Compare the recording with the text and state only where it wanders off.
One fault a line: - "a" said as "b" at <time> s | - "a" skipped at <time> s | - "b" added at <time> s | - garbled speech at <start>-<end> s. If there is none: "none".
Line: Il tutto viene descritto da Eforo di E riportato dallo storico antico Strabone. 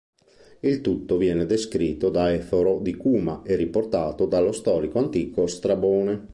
- "Cuma" added at 3.0 s